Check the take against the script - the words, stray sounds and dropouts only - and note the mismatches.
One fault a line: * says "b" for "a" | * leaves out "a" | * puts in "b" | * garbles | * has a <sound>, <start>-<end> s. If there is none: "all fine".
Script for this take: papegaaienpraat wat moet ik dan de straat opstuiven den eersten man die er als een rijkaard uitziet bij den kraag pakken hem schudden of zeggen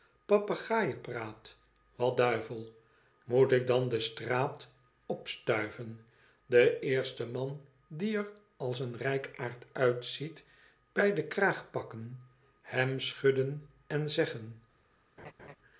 * puts in "duivel"
* says "en" for "of"
* has a laugh, 15.2-15.6 s